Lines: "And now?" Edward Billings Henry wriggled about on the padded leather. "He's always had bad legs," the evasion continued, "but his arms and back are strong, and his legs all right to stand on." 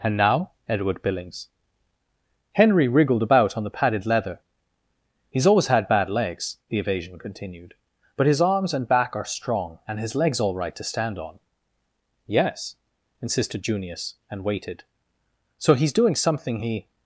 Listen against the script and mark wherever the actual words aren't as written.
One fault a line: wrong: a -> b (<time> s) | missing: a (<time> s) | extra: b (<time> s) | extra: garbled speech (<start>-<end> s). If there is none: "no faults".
extra: Yes insisted Junius and waited So he's doing something he (12.2 s)